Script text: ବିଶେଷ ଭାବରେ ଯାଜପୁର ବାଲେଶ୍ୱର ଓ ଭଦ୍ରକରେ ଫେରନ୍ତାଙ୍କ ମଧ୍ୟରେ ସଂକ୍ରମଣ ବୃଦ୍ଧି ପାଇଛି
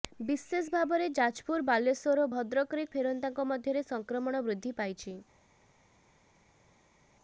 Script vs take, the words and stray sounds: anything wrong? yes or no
no